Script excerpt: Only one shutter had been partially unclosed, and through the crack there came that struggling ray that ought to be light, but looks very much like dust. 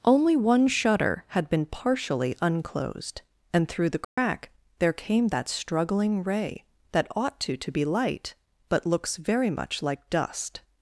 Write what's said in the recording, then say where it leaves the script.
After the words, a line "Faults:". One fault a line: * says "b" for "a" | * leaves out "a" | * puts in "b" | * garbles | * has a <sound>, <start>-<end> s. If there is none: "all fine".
Only one shutter had been partially unclosed, and through the crack there came that struggling ray that ought to to be light, but looks very much like dust.
Faults:
* has a dropout, 4.0-4.2 s
* puts in "to"